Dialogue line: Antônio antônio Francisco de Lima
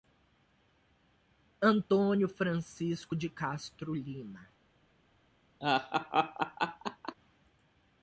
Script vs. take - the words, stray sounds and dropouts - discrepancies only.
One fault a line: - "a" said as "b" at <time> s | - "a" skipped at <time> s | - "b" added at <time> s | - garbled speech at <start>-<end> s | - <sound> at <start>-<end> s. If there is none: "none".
- "antônio" skipped at 2.3 s
- "Castro" added at 3.3 s
- laugh at 5.6-7.1 s